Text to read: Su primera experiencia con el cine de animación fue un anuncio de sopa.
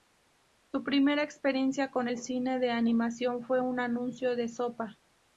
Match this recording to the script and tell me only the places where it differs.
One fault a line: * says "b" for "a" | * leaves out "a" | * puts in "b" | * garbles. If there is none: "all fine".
all fine